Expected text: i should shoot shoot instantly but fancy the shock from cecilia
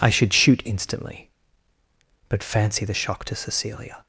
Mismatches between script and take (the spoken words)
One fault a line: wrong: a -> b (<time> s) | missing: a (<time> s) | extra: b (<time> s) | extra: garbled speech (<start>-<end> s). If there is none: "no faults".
missing: shoot (0.6 s)
wrong: from -> to (3.3 s)